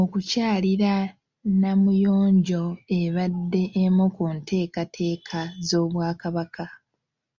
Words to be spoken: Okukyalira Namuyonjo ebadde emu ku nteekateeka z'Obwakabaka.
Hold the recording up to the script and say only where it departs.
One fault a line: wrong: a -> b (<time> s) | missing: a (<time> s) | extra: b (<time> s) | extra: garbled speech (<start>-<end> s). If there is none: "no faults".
no faults